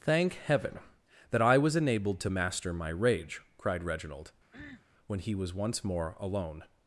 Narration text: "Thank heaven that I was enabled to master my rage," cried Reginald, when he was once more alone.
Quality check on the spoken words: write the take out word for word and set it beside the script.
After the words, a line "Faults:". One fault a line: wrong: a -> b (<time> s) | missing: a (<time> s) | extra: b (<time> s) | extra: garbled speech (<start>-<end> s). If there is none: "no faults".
"Thank heaven that I was enabled to master my rage," cried Reginald, when he was once more alone.
Faults:
no faults